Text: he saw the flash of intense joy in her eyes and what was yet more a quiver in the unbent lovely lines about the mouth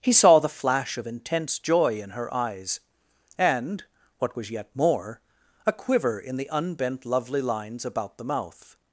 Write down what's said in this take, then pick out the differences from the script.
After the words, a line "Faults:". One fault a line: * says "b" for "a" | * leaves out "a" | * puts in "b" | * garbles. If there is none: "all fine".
he saw the flash of intense joy in her eyes and what was yet more a quiver in the unbent lovely lines about the mouth
Faults:
all fine